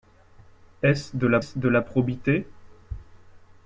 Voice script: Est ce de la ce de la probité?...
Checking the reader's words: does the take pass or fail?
pass